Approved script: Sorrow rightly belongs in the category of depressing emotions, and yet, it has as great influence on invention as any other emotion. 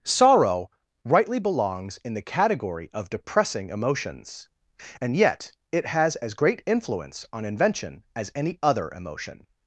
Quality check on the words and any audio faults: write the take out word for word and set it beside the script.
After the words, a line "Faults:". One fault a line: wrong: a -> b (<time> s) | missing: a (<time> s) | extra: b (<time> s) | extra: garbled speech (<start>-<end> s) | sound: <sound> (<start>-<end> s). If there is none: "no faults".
Sorrow rightly belongs in the category of depressing emotions, and yet, it has as great influence on invention as any other emotion.
Faults:
no faults